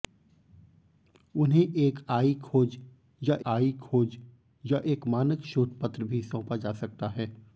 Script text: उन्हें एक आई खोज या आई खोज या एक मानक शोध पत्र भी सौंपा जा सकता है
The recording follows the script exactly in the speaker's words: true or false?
true